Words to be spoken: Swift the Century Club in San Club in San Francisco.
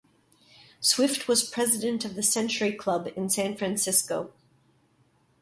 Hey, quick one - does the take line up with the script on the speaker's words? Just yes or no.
no